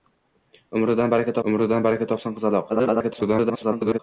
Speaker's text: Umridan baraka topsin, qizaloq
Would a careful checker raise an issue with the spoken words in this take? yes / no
yes